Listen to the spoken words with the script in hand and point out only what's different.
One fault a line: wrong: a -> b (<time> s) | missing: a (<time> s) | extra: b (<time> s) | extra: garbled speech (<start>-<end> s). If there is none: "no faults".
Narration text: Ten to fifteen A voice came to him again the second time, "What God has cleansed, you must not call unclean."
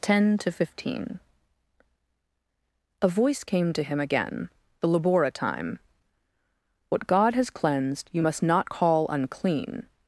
wrong: second -> labora (4.9 s)